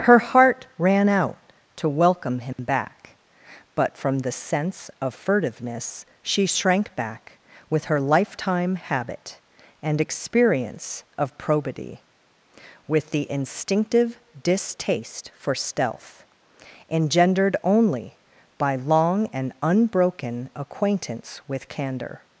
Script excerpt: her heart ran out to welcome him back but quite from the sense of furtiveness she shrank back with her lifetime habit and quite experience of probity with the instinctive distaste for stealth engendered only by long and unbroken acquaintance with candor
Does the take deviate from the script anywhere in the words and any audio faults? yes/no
yes